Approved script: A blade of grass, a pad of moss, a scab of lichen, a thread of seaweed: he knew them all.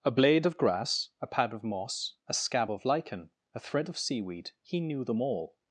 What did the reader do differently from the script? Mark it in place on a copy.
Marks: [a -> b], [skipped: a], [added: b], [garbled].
A blade of grass, a pad of moss, a scab of lichen, a thread of seaweed: he knew them all.